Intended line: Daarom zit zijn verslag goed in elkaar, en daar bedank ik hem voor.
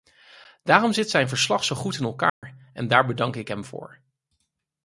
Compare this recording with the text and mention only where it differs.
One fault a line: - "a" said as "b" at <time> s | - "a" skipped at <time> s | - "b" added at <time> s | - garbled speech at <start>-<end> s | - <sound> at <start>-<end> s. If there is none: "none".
- "zo" added at 1.6 s
- dropout at 2.3-2.4 s